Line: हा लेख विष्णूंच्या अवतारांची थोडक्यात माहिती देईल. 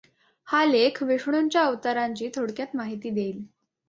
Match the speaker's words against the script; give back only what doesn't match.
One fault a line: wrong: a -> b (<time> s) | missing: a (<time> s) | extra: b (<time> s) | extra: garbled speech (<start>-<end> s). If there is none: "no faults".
no faults